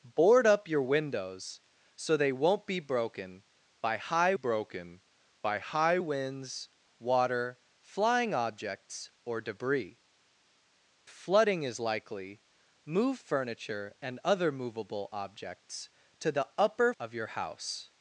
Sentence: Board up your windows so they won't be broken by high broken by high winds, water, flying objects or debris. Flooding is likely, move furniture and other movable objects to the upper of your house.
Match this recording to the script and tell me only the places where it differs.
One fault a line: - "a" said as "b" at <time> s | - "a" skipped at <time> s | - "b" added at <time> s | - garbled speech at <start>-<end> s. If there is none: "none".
none